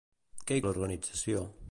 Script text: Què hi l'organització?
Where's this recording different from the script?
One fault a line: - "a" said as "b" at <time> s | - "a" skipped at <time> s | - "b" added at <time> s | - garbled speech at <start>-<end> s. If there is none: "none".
none